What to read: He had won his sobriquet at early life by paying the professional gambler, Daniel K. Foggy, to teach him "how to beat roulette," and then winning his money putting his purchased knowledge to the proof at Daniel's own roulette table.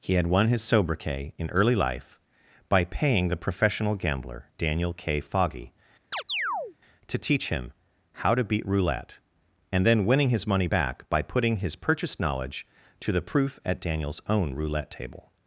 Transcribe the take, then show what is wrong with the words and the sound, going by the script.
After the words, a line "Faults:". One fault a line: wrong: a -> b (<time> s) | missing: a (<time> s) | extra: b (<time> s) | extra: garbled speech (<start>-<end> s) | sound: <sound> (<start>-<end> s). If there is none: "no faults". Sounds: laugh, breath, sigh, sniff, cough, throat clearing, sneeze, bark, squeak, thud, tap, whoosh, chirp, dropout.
He had won his sobriquet in early life by paying the professional gambler, Daniel K. Foggy, to teach him "how to beat roulette," and then winning his money back by putting his purchased knowledge to the proof at Daniel's own roulette table.
Faults:
wrong: at -> in (1.4 s)
sound: chirp (6.1-6.8 s)
extra: back by (10.6 s)